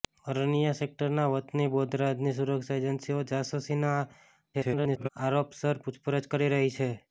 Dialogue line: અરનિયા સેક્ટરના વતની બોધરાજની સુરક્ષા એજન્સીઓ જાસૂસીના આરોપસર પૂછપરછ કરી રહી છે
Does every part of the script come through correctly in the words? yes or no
no